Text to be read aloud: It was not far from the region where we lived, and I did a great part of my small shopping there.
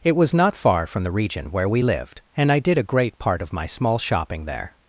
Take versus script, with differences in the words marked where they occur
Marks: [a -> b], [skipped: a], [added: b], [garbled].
It was not far from the region where we lived, and I did a great part of my small shopping there.